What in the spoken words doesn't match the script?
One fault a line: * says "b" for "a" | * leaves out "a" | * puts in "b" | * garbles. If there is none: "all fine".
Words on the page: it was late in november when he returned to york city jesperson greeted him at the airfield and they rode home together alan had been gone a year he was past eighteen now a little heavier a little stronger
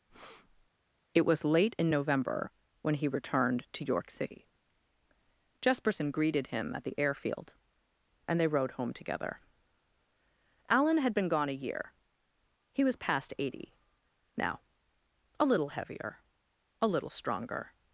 * says "eighty" for "eighteen"